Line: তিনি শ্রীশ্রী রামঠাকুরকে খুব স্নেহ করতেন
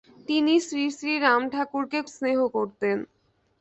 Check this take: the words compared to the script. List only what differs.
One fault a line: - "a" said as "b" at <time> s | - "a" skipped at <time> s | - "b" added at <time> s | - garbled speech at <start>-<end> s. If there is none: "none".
- "খুব" skipped at 2.0 s